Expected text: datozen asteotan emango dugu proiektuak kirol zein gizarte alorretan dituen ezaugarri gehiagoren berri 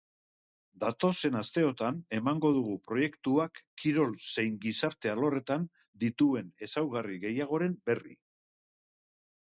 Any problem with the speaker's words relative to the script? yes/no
no